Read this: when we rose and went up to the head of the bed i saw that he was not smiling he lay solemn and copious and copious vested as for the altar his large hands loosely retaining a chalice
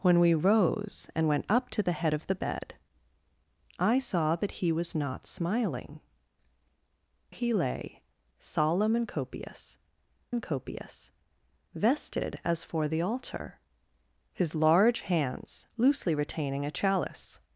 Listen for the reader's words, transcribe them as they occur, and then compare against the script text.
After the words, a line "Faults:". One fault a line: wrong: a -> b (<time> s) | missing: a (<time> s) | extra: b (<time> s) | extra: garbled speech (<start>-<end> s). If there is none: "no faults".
when we rose and went up to the head of the bed i saw that he was not smiling he lay solemn and copious and copious vested as for the altar his large hands loosely retaining a chalice
Faults:
no faults